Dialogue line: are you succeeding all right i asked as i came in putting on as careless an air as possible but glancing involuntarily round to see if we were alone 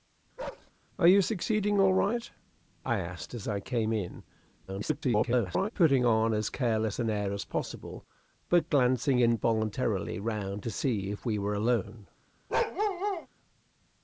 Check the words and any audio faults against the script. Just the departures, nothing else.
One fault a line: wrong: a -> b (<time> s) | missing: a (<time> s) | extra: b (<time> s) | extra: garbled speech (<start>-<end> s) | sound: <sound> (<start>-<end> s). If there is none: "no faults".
sound: bark (0.4-0.7 s)
extra: garbled speech (4.7-5.7 s)
sound: bark (12.5-13.3 s)